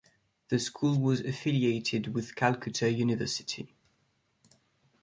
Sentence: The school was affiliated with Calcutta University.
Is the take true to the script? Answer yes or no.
yes